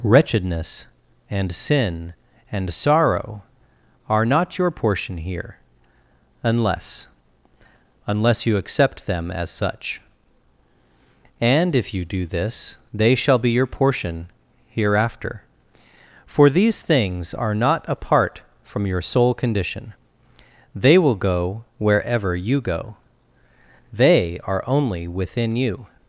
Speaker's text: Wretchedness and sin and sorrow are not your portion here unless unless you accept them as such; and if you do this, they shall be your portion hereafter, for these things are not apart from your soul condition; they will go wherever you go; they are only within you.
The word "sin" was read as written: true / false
true